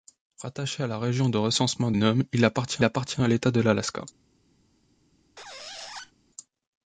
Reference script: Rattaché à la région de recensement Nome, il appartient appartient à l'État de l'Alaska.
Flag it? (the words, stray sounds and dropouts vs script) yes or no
yes